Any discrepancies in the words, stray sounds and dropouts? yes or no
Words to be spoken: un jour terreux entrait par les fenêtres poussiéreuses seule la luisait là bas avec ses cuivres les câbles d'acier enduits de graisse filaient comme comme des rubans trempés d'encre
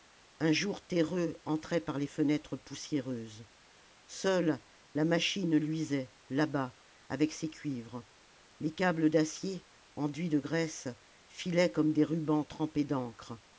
yes